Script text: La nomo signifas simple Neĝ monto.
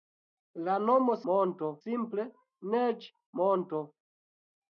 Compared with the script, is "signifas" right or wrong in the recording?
wrong